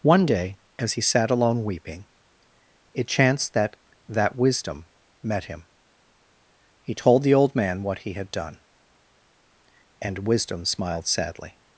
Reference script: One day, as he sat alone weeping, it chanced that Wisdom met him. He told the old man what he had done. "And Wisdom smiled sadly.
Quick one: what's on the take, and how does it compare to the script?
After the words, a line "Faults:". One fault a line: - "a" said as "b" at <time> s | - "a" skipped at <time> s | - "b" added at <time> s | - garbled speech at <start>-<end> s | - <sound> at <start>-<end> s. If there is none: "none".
One day, as he sat alone weeping, it chanced that that Wisdom met him. He told the old man what he had done. "And Wisdom smiled sadly.
Faults:
- "that" added at 4.1 s